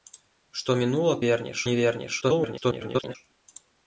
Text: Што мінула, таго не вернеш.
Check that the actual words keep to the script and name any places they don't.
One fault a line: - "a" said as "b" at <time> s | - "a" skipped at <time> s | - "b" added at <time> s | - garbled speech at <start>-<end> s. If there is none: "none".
- "таго" said as "вернеш" at 1.3 s
- garbled speech at 2.2-3.2 s